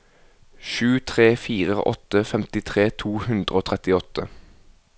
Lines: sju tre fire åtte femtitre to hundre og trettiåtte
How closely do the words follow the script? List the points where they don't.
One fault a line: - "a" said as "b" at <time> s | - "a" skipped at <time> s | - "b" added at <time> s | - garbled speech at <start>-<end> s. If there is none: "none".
none